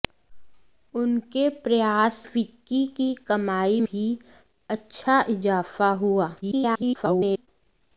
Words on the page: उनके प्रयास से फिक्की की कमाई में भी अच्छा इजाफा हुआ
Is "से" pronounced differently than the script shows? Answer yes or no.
yes